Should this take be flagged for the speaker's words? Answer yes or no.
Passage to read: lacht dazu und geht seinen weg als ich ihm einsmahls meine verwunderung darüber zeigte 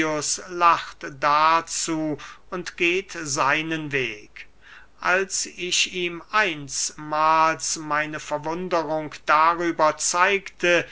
no